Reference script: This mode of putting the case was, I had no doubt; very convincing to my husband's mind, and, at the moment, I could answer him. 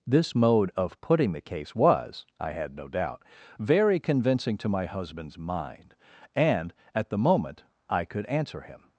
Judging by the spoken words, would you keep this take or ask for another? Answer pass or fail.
pass